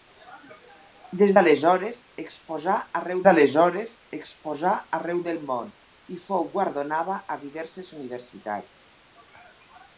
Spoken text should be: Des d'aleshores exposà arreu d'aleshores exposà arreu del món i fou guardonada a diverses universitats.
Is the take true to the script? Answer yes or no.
yes